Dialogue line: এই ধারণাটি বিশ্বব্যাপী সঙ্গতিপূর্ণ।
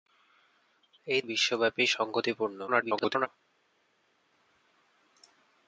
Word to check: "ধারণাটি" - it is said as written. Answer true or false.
false